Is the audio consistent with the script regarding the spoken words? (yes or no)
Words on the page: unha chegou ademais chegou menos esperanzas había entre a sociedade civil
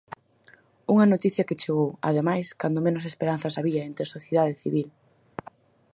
no